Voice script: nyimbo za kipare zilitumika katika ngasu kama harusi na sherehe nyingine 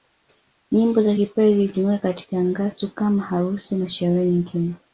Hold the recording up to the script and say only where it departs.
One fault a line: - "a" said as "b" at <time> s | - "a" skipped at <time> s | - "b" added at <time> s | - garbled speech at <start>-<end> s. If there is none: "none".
none